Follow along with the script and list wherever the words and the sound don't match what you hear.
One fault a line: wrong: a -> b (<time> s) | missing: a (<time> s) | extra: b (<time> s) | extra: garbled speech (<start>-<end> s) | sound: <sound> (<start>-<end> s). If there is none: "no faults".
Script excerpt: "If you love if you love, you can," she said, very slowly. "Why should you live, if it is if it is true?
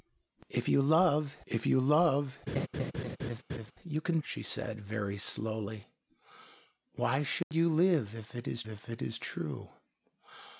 sound: laugh (2.5-3.7 s)
sound: dropout (7.4-7.5 s)